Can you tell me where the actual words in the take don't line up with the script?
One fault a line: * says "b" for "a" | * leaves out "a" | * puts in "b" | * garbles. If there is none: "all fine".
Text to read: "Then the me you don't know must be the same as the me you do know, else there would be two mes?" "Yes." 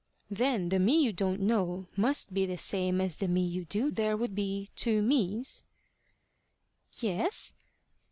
* leaves out "know else"